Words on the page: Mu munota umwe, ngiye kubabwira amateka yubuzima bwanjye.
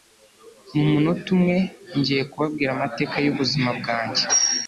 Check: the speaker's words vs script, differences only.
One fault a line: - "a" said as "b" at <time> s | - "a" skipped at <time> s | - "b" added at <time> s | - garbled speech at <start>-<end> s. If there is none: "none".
none